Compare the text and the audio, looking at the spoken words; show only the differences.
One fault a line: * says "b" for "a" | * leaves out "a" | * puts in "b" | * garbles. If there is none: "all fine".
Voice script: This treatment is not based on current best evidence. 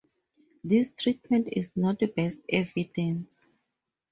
* leaves out "based on current"